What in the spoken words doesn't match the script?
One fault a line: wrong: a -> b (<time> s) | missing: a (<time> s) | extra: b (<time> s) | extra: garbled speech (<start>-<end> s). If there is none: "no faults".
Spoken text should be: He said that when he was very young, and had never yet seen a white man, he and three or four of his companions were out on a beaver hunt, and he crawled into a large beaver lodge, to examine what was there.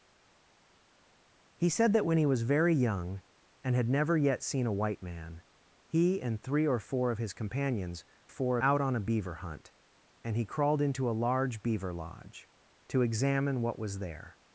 wrong: were -> four (8.3 s)